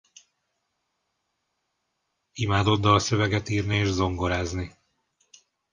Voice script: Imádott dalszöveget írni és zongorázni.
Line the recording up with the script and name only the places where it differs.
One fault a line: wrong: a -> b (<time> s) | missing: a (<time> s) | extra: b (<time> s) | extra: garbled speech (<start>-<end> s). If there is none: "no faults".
no faults